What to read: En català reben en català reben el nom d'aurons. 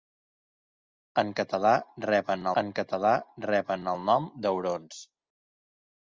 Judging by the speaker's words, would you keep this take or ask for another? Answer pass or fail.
pass